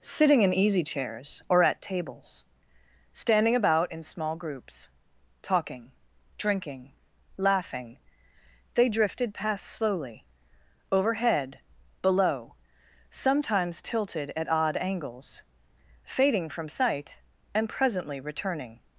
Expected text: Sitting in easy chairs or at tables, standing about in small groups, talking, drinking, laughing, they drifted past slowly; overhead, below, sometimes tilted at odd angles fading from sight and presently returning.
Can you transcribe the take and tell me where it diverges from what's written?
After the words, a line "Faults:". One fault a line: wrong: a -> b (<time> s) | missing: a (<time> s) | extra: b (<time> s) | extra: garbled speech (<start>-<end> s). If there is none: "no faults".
Sitting in easy chairs or at tables, standing about in small groups, talking, drinking, laughing, they drifted past slowly; overhead, below, sometimes tilted at odd angles fading from sight and presently returning.
Faults:
no faults